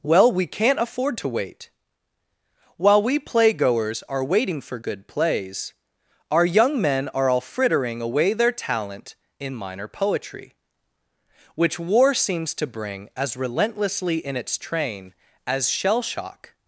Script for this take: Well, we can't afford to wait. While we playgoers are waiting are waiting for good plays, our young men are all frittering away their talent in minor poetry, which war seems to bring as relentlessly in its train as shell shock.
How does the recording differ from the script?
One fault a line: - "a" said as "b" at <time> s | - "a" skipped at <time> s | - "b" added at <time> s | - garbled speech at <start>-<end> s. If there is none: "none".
- "are waiting" skipped at 4.6 s